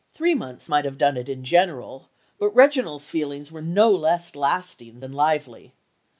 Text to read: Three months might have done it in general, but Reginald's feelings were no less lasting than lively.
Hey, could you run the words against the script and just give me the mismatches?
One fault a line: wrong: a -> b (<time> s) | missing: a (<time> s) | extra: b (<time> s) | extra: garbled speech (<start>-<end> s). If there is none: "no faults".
no faults